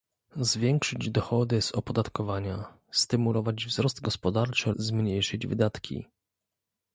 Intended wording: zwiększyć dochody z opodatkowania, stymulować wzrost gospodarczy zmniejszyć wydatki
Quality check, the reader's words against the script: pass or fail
pass